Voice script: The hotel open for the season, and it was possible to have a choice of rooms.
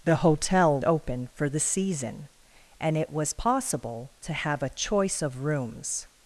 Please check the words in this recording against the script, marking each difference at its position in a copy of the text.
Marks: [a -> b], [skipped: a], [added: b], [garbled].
The hotel open for the season, and it was possible to have a choice of rooms.